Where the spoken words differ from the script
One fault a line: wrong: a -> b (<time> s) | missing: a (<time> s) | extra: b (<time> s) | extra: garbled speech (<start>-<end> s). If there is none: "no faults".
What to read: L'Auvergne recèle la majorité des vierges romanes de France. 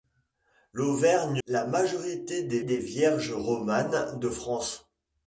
missing: recèle (1.4 s)
extra: des (2.6 s)